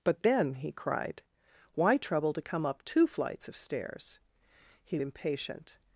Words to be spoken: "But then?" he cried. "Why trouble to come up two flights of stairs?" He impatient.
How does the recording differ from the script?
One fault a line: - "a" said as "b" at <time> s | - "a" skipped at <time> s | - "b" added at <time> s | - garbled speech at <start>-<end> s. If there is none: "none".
none